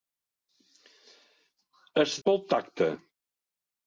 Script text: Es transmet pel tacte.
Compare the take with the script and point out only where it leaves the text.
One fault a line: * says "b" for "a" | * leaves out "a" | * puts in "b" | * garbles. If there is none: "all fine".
* leaves out "transmet"